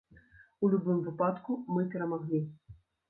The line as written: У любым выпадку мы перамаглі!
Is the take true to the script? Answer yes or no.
yes